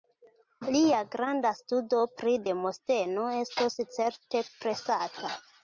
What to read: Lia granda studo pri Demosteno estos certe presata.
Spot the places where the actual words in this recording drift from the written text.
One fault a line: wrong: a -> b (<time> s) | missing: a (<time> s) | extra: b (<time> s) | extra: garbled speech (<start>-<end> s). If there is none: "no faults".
no faults